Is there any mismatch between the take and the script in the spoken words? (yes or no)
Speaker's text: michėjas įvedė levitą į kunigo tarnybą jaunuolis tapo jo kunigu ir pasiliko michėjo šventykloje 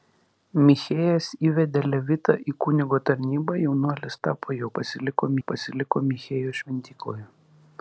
yes